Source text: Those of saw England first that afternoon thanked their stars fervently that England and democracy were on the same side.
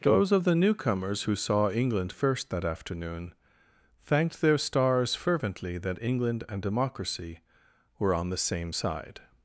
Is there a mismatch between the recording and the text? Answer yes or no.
yes